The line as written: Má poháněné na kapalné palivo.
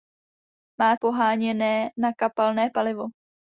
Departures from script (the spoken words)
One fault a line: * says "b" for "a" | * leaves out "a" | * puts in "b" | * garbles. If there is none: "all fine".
all fine